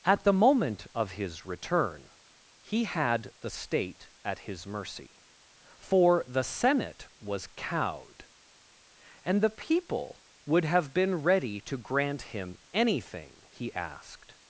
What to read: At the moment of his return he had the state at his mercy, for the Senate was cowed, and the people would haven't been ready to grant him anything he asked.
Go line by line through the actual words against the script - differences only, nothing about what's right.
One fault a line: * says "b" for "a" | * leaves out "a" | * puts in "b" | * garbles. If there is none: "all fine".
* says "have" for "haven't"